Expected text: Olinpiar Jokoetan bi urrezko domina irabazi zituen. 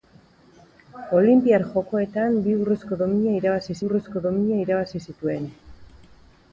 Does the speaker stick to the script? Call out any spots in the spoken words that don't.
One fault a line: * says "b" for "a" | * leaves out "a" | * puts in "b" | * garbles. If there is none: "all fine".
* puts in "urrezko domina irabazi"